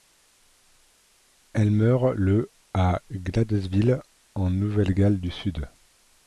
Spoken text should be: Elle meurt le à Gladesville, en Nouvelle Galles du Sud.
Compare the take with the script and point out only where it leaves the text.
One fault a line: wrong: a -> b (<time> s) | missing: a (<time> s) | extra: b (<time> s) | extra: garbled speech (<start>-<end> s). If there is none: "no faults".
no faults